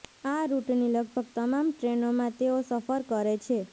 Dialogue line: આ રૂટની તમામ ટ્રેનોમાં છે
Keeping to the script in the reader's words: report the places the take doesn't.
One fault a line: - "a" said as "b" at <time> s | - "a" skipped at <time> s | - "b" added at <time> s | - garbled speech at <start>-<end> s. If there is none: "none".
- "લગભગ" added at 0.9 s
- "તેઓ સફર કરે" added at 2.4 s